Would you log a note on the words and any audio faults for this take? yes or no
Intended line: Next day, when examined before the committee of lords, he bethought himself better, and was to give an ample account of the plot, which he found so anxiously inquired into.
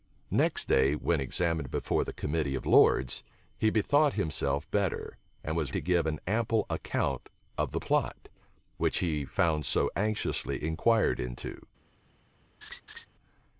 yes